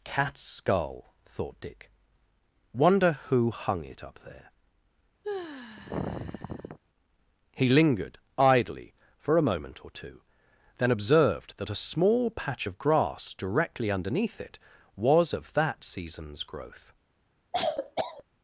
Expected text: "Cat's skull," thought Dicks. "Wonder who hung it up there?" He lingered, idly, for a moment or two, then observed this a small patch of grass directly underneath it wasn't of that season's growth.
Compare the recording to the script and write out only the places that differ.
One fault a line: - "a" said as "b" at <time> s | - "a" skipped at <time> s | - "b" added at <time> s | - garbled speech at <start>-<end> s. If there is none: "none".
- "Dicks" said as "Dick" at 1.6 s
- "this" said as "that" at 11.6 s
- "wasn't" said as "was" at 15.0 s